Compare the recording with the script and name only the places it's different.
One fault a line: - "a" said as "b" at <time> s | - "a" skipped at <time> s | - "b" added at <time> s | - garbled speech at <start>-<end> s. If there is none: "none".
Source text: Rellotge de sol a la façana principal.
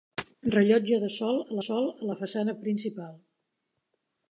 - "sol a" added at 1.6 s